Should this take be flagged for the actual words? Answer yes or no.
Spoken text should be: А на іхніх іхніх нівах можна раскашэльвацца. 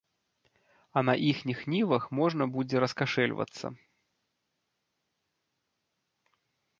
yes